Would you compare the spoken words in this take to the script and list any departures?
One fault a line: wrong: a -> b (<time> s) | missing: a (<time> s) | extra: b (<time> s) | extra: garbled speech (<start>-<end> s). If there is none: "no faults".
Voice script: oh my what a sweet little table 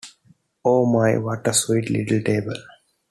no faults